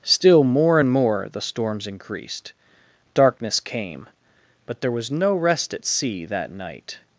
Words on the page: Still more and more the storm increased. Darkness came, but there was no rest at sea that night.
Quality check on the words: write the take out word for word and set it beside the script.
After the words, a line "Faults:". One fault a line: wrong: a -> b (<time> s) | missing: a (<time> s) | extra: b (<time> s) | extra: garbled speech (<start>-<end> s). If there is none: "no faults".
Still more and more the storms increased. Darkness came, but there was no rest at sea that night.
Faults:
wrong: storm -> storms (1.4 s)